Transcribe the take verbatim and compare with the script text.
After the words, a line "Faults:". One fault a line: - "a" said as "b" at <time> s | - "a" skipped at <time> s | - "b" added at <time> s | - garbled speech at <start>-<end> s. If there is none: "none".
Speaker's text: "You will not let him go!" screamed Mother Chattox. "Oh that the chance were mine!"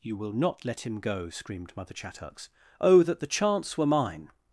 "You will not let him go!" screamed Mother Chattox. "Oh that the chance were mine!"
Faults:
none